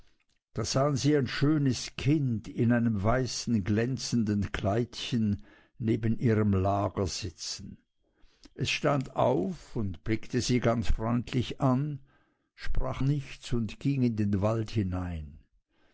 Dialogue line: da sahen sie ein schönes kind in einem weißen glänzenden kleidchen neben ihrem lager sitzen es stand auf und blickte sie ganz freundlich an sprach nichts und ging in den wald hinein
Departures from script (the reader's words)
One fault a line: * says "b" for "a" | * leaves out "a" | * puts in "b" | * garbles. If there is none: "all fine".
all fine